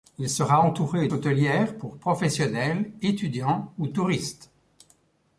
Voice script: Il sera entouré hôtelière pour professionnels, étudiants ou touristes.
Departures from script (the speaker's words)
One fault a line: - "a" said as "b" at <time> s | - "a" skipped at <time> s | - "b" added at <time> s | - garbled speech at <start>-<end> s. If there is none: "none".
none